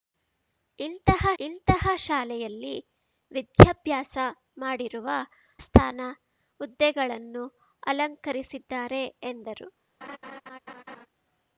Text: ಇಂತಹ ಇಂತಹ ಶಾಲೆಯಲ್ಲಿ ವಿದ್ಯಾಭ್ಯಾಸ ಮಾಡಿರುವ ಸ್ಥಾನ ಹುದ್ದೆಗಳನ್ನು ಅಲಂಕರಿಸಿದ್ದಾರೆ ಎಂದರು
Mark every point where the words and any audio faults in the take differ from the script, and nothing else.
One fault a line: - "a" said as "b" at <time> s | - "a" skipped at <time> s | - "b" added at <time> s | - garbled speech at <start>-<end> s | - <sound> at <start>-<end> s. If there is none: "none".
- laugh at 10.0-11.1 s